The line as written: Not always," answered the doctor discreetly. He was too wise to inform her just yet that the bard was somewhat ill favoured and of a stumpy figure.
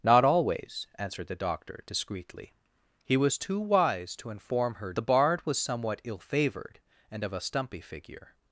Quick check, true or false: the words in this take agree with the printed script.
false